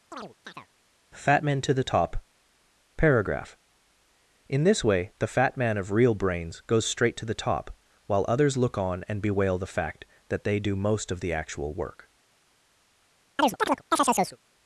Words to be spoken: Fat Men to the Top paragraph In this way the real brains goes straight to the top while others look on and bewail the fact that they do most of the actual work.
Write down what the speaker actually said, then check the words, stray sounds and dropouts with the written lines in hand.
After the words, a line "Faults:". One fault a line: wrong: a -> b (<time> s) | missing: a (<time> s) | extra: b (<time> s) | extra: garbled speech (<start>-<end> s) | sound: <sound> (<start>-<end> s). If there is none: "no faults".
Fat Men to the Top paragraph In this way the fat man of real brains goes straight to the top while others look on and bewail the fact that they do most of the actual work.
Faults:
sound: chirp (0.1-0.7 s)
extra: fat man of (5.3 s)
sound: chirp (13.4-14.4 s)